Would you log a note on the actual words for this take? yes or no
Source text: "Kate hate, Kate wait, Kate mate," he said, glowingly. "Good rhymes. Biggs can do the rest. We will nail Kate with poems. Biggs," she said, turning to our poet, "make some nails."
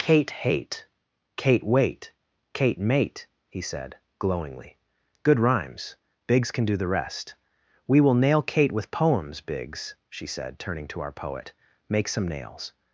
no